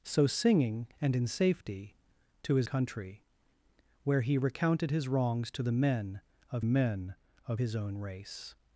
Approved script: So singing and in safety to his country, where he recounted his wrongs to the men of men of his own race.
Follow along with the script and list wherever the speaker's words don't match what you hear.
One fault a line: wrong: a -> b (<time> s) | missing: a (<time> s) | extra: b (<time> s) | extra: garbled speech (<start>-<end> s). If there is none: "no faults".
no faults